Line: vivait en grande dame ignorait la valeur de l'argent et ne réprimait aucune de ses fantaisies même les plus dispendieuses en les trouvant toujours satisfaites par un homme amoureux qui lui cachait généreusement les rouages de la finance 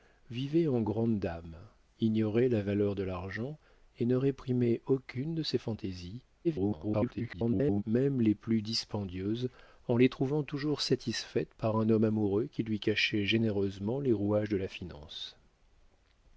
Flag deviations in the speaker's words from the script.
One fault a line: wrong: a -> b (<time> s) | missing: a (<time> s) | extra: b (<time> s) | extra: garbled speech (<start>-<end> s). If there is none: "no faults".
extra: garbled speech (6.4-7.8 s)